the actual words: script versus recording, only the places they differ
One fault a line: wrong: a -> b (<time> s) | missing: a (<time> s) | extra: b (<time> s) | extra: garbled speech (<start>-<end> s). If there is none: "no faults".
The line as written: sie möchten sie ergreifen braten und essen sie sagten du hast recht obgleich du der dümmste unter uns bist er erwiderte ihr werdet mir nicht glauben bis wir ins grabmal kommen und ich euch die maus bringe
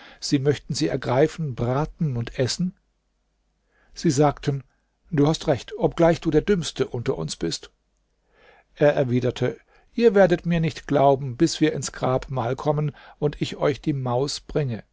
no faults